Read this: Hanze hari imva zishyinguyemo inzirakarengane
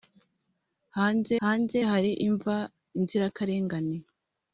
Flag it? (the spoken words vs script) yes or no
yes